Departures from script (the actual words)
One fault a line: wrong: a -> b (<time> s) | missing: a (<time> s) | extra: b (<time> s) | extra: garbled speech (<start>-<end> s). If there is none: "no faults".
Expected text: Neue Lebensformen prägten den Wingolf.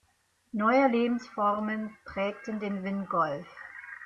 no faults